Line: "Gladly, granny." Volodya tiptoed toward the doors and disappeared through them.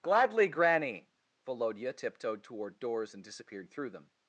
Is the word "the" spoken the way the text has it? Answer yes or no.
no